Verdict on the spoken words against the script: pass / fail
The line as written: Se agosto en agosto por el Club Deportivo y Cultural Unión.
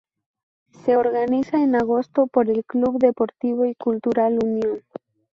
fail